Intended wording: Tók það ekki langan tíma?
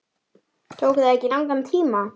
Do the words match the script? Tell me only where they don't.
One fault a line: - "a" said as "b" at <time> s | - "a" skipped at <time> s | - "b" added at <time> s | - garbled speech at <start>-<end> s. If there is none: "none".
none